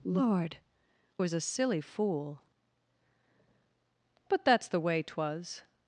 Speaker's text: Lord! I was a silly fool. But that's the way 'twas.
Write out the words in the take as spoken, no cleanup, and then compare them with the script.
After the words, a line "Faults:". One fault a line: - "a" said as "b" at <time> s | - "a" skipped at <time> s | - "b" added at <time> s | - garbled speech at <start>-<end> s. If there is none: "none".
Lord! was a silly fool. But that's the way 'twas.
Faults:
- "I" skipped at 0.6 s